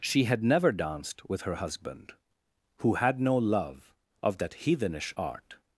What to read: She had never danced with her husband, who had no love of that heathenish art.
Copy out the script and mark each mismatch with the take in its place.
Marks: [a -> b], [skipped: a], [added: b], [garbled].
She had never danced with her husband, who had no love of that heathenish art.